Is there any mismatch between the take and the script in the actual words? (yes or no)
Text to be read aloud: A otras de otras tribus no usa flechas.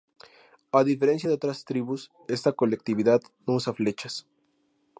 yes